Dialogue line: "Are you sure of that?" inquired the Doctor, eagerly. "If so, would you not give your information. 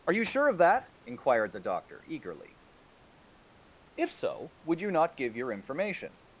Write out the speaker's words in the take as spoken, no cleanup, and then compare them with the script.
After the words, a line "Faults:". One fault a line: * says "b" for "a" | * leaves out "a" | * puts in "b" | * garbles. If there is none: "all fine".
"Are you sure of that?" inquired the Doctor, eagerly. "If so, would you not give your information.
Faults:
all fine